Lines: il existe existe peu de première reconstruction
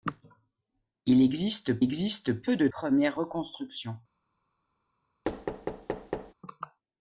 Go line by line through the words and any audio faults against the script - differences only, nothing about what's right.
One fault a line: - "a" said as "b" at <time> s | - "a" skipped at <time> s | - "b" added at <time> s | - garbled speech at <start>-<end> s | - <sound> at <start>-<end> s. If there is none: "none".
- thud at 5.2-6.3 s